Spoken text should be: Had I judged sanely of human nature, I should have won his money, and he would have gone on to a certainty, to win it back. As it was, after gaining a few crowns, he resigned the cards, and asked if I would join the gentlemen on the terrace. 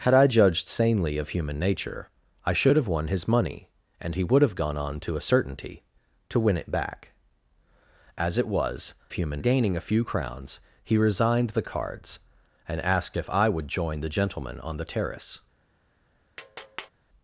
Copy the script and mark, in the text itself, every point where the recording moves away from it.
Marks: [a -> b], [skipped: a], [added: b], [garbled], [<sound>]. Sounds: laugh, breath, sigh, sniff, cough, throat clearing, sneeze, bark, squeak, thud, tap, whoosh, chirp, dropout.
Had I judged sanely of human nature, I should have won his money, and he would have gone on to a certainty, to win it back. As it was, [after -> human] gaining a few crowns, he resigned the cards, and asked if I would join the gentlemen on the terrace. [tap]